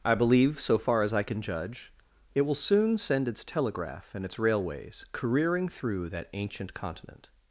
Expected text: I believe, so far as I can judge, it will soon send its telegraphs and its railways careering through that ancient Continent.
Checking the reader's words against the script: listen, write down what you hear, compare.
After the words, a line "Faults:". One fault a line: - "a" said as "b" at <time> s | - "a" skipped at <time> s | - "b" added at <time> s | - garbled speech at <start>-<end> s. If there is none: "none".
I believe, so far as I can judge, it will soon send its telegraph and its railways careering through that ancient Continent.
Faults:
- "telegraphs" said as "telegraph" at 3.4 s